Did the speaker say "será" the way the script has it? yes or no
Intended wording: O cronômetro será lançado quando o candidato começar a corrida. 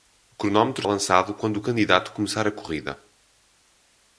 no